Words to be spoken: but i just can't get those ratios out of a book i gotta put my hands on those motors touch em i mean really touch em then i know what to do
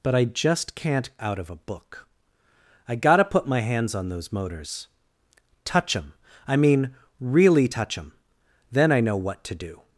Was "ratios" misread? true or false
true